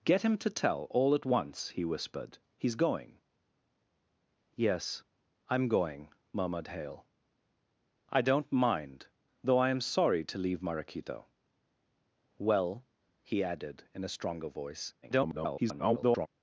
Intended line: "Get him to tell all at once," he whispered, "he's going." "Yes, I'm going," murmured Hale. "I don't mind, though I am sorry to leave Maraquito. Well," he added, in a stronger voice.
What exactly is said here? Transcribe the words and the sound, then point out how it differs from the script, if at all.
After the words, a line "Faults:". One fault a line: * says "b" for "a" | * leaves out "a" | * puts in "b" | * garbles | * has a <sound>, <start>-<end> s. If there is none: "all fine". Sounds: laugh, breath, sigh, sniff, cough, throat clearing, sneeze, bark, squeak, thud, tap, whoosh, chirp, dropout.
"Get him to tell all at once," he whispered, "he's going." "Yes, I'm going," murmured Hale. "I don't mind, though I am sorry to leave Maraquito. Well," he added, in a stronger voice. [garbled]
Faults:
* garbles